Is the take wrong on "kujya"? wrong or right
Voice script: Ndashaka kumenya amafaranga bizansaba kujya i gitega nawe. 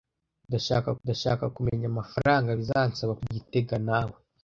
wrong